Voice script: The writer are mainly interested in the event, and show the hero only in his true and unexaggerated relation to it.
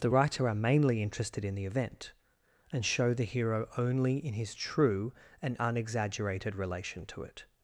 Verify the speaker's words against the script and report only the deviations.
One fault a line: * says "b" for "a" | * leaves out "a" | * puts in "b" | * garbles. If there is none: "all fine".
all fine